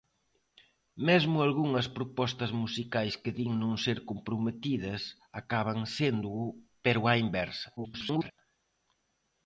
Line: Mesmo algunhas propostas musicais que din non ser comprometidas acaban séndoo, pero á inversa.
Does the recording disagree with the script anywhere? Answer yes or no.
yes